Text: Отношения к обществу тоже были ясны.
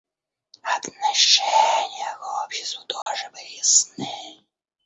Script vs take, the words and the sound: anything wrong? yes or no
yes